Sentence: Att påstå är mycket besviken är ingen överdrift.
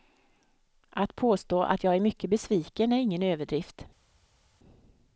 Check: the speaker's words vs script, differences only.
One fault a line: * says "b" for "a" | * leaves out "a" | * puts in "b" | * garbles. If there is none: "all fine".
* puts in "att jag"